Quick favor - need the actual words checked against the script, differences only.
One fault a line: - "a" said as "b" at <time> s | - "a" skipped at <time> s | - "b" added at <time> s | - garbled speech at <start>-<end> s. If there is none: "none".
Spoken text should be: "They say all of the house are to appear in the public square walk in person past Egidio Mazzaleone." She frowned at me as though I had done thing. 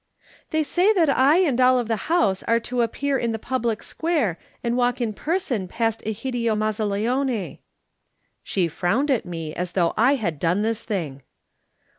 - "that I and" added at 0.9 s
- "and" added at 4.6 s
- "this" added at 10.6 s